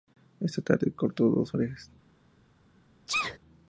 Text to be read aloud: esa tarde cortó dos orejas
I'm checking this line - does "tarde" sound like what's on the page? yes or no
yes